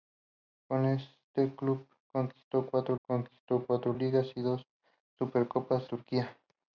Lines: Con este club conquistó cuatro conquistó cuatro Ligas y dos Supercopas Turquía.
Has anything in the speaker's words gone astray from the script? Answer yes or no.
no